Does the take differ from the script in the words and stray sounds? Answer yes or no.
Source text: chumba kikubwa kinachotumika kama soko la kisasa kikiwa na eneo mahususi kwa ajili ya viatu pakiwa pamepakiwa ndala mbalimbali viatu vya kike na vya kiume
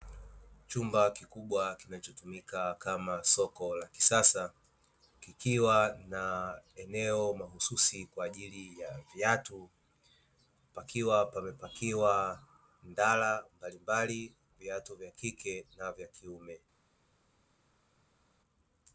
no